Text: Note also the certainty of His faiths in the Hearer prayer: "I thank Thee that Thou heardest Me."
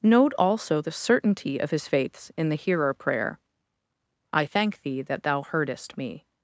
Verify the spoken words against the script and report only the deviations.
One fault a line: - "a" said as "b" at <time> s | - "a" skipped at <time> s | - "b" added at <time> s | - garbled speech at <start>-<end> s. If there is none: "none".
none